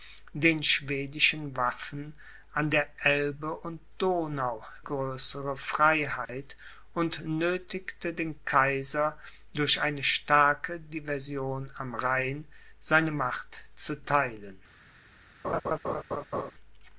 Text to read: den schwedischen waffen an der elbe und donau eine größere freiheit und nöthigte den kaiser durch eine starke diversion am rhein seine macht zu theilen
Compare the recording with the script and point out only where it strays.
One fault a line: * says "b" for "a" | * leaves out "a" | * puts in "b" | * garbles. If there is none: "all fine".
* leaves out "eine"